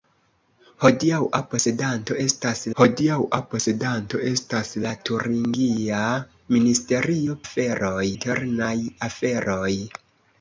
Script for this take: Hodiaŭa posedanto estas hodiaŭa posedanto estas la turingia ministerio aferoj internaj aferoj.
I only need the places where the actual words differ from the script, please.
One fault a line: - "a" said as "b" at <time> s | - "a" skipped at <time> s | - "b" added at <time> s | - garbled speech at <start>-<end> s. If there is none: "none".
none